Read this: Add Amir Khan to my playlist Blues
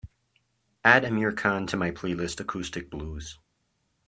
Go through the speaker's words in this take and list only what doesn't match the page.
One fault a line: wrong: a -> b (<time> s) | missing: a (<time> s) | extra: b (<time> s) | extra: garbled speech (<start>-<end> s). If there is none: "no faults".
extra: Acoustic (2.4 s)